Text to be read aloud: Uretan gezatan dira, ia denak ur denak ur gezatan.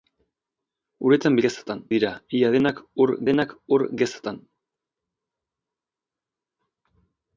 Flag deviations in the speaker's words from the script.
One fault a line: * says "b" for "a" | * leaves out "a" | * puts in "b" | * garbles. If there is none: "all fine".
all fine